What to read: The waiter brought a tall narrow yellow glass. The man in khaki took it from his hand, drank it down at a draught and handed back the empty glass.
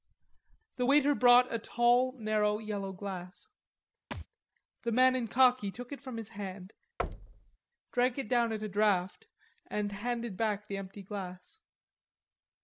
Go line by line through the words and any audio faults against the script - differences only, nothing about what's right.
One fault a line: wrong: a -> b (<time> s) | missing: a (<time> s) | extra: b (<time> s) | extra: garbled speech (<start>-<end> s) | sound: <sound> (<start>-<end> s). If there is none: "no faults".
sound: thud (4.1-4.3 s)
sound: thud (7.0-7.6 s)